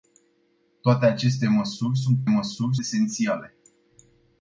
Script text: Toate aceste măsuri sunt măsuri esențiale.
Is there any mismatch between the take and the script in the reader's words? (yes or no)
no